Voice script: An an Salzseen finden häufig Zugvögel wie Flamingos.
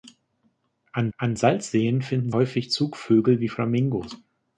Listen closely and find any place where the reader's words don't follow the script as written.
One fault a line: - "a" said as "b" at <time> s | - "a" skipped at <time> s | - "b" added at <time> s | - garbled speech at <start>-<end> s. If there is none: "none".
none